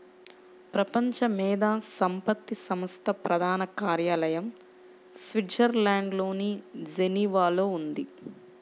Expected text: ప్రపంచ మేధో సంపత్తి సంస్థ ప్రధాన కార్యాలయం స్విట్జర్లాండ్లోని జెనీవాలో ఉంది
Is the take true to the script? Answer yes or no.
yes